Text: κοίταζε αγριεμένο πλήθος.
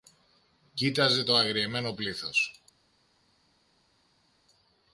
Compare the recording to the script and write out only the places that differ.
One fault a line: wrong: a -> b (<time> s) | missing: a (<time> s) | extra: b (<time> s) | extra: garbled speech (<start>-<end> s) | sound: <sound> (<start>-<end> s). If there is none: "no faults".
extra: το (1.2 s)